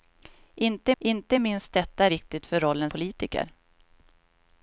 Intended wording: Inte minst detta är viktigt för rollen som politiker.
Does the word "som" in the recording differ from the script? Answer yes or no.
yes